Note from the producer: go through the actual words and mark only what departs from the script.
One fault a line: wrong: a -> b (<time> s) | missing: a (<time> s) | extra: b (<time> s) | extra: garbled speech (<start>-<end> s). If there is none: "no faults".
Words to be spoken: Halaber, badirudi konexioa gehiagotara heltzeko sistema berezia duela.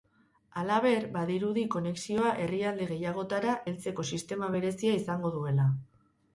extra: herrialde (2.5 s)
extra: izango (5.0 s)